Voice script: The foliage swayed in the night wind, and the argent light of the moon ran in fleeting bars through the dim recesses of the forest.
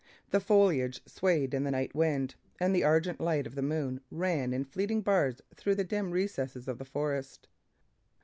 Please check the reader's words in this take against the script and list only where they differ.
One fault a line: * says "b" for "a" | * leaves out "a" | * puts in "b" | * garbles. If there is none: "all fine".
all fine